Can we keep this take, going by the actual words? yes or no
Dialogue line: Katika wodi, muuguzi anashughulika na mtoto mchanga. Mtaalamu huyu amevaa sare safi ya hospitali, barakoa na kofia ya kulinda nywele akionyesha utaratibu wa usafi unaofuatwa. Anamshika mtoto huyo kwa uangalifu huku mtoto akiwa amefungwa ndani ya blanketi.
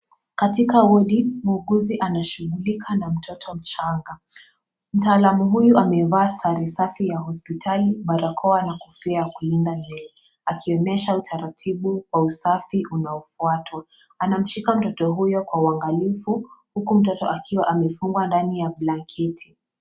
yes